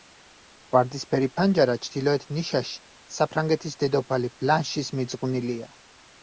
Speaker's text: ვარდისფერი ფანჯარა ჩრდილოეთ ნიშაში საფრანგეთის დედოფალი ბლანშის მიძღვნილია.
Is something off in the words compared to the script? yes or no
no